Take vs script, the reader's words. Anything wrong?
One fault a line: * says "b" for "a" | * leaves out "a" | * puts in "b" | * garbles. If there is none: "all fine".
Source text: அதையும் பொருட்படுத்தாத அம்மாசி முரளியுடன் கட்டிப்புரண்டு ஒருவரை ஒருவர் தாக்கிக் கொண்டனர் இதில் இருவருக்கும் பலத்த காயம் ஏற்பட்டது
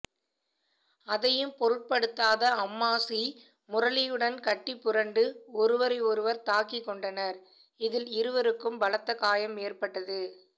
all fine